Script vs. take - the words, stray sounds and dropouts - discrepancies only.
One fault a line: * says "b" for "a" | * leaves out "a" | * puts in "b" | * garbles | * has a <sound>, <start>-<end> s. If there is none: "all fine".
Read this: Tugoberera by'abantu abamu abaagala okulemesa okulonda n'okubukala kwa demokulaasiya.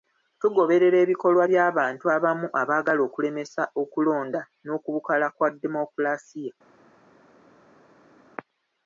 * puts in "ebikolwa"